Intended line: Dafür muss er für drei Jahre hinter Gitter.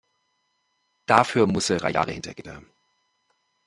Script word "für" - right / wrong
wrong